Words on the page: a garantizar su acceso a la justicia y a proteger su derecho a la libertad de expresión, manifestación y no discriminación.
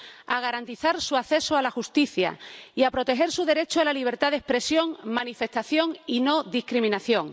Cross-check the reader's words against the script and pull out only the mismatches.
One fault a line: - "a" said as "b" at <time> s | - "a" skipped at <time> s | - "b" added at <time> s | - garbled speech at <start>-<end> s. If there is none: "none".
none